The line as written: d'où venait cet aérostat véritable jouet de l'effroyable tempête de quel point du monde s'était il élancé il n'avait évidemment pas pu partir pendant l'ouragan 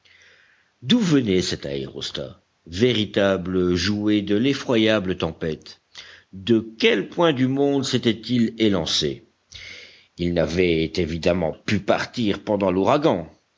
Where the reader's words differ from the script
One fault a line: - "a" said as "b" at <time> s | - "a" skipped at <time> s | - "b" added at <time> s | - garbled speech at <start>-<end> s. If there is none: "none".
- "pas" skipped at 11.5 s